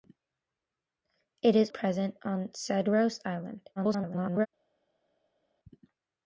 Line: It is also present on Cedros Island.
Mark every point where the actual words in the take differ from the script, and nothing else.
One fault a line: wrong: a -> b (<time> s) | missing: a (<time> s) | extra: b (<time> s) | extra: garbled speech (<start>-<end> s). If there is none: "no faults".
missing: also (1.7 s)
extra: garbled speech (3.8-4.5 s)